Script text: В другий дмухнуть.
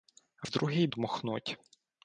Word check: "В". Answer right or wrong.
right